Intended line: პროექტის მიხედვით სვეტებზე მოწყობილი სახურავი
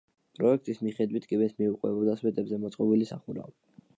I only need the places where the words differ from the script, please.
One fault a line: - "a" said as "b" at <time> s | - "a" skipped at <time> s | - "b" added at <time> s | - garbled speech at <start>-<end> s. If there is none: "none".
- "კიბეს მიუყვებოდა" added at 1.3 s